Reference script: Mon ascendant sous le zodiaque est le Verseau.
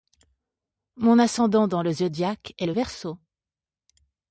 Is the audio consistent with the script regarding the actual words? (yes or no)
no